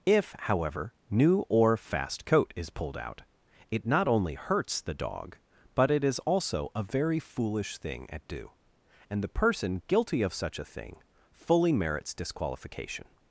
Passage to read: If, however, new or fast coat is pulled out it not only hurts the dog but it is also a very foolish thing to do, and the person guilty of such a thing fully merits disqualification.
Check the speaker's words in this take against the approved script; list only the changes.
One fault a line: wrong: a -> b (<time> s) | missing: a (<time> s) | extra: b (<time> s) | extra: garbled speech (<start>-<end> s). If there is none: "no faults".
wrong: to -> at (8.1 s)